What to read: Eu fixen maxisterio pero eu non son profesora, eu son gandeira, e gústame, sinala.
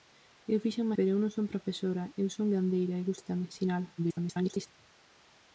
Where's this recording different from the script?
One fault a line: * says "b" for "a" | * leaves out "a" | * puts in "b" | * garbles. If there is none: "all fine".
* leaves out "maxisterio"
* garbles